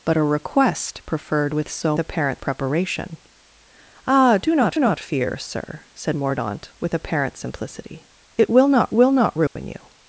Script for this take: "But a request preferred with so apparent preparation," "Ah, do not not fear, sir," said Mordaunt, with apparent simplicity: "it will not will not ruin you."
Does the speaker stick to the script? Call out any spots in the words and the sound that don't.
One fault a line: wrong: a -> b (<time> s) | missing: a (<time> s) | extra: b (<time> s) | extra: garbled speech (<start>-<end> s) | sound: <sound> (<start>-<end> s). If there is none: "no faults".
sound: dropout (9.5-9.6 s)